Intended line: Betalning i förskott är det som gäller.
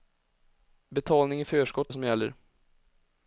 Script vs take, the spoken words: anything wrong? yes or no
yes